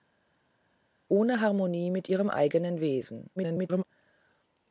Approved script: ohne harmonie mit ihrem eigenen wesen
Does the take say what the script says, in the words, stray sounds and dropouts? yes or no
no